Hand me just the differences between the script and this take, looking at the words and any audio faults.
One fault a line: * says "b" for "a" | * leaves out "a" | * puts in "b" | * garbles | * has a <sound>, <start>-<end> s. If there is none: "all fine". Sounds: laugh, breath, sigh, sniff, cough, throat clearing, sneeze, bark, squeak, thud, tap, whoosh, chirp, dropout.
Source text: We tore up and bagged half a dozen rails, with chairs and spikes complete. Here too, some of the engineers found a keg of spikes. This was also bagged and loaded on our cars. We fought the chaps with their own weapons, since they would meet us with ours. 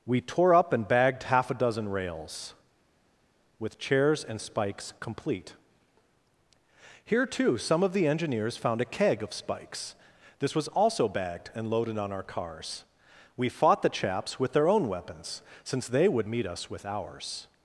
all fine